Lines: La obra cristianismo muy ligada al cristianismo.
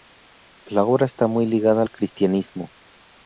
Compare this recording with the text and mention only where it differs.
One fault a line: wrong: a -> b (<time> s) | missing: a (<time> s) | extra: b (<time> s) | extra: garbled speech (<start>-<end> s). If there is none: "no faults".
wrong: cristianismo -> está (1.1 s)